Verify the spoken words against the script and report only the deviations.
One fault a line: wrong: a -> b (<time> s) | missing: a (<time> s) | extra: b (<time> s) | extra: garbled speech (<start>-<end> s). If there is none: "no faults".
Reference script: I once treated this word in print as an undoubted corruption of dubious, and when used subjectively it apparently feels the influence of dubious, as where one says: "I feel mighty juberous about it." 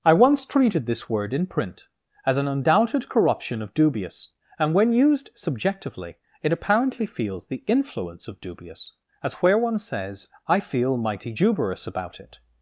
no faults